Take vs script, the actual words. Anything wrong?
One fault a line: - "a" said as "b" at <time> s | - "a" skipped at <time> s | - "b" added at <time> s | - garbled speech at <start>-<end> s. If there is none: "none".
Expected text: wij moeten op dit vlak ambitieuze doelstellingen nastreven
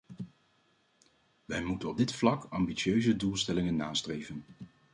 none